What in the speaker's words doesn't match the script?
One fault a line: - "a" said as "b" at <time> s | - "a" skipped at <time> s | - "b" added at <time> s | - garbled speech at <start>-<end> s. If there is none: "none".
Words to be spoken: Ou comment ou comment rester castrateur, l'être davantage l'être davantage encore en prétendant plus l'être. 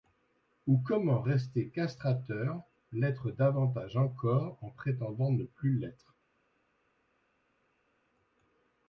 - "ou comment" skipped at 1.2 s
- "l'être davantage" skipped at 4.0 s
- "ne" added at 5.3 s